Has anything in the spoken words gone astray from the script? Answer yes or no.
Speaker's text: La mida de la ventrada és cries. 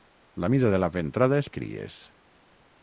no